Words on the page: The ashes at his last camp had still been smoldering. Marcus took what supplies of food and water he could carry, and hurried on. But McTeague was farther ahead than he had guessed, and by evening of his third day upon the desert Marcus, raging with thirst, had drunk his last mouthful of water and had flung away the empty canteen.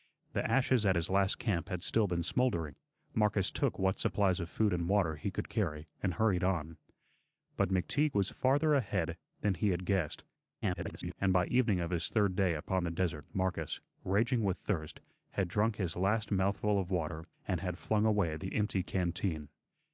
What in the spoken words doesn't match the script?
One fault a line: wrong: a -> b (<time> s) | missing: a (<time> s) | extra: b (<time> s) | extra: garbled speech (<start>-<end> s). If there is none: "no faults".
extra: garbled speech (10.6-11.1 s)